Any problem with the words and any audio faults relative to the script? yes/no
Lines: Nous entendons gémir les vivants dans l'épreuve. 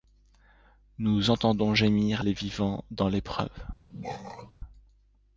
yes